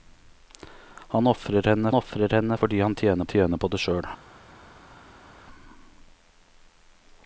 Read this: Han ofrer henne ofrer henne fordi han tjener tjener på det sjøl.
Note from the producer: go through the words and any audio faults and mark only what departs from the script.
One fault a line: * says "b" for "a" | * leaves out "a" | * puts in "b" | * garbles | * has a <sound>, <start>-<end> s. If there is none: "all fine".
all fine